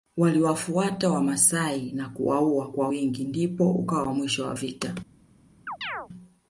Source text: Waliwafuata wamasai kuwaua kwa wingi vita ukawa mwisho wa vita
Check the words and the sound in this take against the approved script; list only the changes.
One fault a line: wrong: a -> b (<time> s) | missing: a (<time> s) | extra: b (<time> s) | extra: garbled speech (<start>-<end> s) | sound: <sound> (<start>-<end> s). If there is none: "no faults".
extra: na (1.9 s)
wrong: vita -> ndipo (3.2 s)
sound: chirp (5.7-6.1 s)